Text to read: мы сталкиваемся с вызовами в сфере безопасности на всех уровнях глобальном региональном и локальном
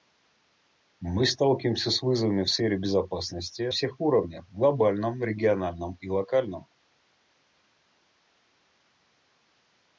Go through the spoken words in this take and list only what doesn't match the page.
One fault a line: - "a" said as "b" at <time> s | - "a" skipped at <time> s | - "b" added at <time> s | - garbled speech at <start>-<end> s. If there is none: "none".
- "на" skipped at 3.6 s